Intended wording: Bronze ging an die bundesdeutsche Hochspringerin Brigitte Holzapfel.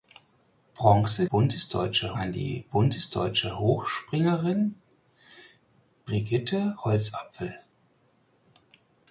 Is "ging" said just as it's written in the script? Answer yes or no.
no